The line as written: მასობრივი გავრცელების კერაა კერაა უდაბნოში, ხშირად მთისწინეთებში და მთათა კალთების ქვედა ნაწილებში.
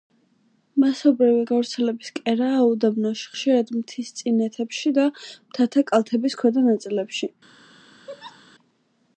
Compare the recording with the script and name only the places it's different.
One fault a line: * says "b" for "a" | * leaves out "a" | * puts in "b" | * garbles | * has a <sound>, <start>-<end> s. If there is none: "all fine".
* leaves out "კერაა"
* has a laugh, 8.1-8.4 s